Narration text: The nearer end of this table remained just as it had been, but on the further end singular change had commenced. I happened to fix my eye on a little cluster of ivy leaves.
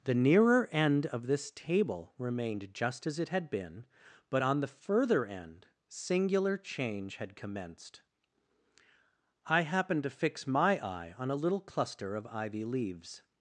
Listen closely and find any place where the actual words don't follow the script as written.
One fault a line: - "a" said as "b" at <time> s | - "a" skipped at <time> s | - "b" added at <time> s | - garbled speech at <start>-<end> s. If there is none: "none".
none